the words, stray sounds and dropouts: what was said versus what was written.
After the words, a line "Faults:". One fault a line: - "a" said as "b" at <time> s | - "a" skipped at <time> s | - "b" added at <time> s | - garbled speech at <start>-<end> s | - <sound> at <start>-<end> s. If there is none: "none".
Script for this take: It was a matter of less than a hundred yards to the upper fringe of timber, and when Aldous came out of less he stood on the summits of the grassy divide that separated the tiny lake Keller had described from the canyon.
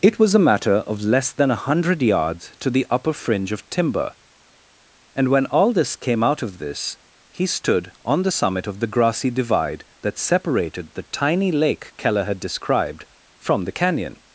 It was a matter of less than a hundred yards to the upper fringe of timber, and when Aldous came out of this he stood on the summit of the grassy divide that separated the tiny lake Keller had described from the canyon.
Faults:
- "less" said as "this" at 6.6 s
- "summits" said as "summit" at 8.3 s